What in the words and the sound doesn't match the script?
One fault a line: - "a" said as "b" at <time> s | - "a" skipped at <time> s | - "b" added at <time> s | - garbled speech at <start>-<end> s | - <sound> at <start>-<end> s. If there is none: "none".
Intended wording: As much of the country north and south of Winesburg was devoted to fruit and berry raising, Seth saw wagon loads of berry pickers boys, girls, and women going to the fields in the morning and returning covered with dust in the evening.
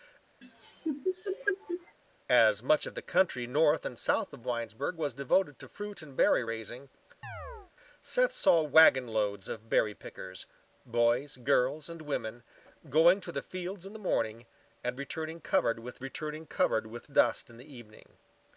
- laugh at 0.4-2.0 s
- chirp at 7.2-7.7 s
- "returning covered with" added at 16.0 s